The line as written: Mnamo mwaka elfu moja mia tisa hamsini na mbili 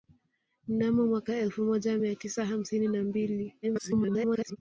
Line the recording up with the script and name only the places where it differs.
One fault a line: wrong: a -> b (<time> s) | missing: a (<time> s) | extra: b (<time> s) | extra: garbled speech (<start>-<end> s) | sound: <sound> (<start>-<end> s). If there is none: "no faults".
extra: garbled speech (3.6-4.6 s)